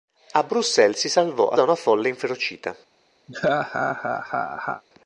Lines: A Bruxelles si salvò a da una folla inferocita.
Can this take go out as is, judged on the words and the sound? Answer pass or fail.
fail